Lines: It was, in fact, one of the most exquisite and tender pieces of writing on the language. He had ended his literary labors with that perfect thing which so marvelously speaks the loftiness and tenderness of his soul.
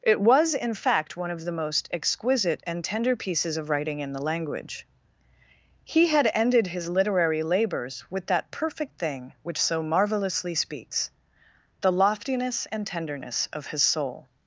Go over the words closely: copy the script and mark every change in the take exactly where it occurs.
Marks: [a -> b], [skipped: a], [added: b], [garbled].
It was, in fact, one of the most exquisite and tender pieces of writing [on -> in] the language. He had ended his literary labors with that perfect thing which so marvelously speaks the loftiness and tenderness of his soul.